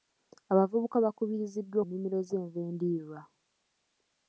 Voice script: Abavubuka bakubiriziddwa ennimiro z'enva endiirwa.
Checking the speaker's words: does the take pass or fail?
pass